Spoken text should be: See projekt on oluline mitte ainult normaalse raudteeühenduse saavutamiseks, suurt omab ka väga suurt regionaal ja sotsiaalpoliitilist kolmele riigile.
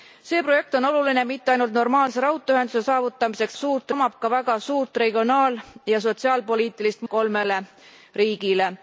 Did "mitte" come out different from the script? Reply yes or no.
no